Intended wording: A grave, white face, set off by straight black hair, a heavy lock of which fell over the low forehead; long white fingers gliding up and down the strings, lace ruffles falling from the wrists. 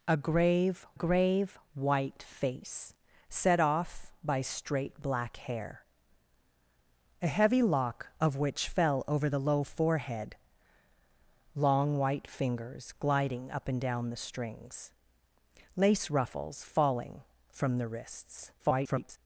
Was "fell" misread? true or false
false